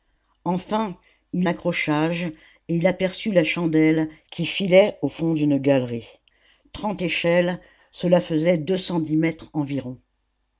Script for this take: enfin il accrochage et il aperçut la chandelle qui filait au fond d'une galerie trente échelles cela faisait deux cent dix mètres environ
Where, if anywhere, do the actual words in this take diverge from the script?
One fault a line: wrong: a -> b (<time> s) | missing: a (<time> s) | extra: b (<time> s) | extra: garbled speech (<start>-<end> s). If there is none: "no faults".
no faults